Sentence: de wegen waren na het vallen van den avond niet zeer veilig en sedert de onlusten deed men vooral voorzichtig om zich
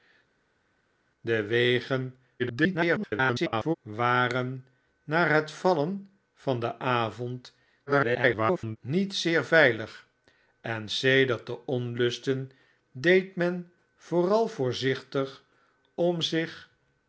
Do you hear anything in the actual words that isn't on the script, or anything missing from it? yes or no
yes